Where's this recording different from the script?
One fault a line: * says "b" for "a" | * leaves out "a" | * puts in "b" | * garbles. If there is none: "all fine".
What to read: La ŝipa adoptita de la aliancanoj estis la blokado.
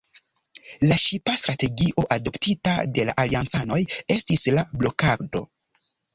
* puts in "strategio"